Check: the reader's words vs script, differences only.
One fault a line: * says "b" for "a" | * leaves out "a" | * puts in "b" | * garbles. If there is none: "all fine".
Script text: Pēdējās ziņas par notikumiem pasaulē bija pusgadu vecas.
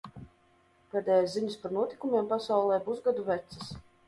* leaves out "bija"